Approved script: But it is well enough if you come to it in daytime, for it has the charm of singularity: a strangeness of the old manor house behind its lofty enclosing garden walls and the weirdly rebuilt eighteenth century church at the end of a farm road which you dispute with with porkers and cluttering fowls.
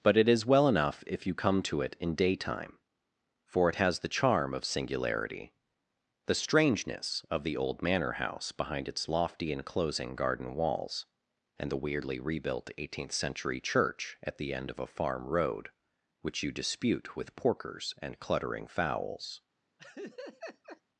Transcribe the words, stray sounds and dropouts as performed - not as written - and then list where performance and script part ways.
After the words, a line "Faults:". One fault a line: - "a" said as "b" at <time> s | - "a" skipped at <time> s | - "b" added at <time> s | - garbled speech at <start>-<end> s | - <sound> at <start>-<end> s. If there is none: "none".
But it is well enough if you come to it in daytime, for it has the charm of singularity: the strangeness of the old manor house behind its lofty enclosing garden walls and the weirdly rebuilt eighteenth century church at the end of a farm road which you dispute with porkers and cluttering fowls.
Faults:
- "a" said as "the" at 6.2 s
- "with" skipped at 17.4 s
- laugh at 19.8-20.8 s